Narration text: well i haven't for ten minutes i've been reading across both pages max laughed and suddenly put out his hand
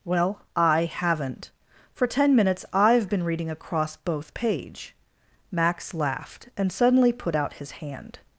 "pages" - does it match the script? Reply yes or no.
no